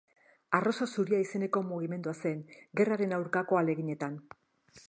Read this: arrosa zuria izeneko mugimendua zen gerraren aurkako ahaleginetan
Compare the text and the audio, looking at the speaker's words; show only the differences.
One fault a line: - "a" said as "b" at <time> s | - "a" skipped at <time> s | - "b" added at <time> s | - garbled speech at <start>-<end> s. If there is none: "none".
none